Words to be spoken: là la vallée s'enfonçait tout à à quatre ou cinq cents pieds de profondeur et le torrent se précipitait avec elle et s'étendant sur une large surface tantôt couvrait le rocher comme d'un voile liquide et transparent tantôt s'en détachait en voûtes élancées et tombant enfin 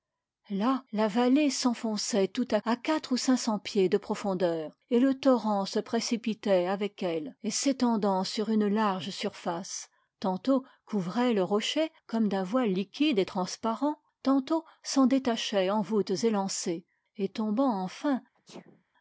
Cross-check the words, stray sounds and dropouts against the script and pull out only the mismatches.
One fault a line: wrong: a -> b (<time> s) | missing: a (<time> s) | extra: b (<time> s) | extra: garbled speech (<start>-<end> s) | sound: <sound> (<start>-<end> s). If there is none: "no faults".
sound: sneeze (18.3-18.8 s)